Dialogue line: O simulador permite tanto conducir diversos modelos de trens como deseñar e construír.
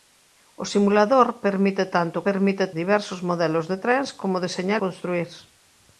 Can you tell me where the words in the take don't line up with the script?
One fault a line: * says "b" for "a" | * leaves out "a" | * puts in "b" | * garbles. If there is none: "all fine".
* says "permite" for "conducir"
* leaves out "e"